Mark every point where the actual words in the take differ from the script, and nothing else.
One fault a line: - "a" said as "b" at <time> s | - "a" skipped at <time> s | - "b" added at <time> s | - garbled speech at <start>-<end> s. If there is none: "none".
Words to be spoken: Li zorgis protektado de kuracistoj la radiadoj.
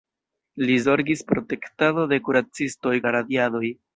none